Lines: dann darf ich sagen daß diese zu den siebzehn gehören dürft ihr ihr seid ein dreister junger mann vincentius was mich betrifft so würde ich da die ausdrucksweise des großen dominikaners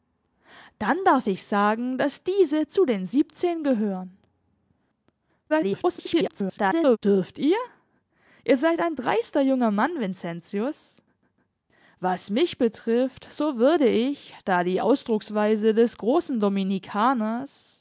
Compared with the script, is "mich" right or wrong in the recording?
right